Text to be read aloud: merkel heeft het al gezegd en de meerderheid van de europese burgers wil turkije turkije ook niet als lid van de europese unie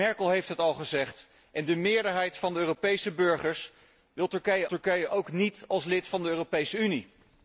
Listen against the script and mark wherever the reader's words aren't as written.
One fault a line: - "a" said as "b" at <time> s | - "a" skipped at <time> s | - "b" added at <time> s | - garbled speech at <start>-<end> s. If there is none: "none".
none